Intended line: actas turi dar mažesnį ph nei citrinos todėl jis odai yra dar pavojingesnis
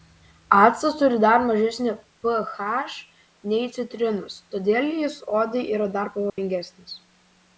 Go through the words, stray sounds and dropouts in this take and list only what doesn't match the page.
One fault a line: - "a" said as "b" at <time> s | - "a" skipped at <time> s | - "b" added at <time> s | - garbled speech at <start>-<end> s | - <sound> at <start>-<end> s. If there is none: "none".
- dropout at 6.3-6.4 s